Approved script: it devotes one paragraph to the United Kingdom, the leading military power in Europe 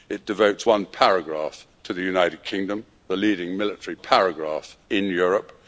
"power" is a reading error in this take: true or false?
true